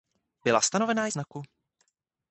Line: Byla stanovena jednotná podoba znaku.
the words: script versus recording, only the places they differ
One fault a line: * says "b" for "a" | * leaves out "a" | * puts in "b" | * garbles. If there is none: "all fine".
* leaves out "jednotná podoba"